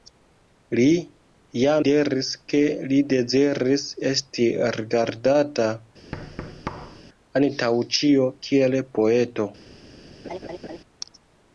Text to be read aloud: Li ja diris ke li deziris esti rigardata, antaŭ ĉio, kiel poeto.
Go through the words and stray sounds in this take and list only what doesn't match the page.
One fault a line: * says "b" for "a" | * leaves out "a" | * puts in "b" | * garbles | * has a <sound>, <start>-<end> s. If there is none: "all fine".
* has a thud, 6.1-7.0 s
* has a laugh, 10.2-10.8 s